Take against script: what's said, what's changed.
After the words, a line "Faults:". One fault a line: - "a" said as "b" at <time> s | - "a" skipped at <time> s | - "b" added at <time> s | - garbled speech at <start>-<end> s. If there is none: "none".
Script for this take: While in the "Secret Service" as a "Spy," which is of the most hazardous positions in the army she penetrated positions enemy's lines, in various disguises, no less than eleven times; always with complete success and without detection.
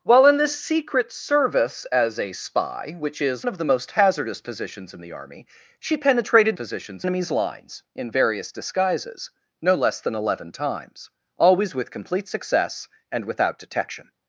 While in the "Secret Service" as a "Spy," which is of the most hazardous positions in the army she penetrated positions enemy's lines, in various disguises, no less than eleven times; always with complete success and without detection.
Faults:
none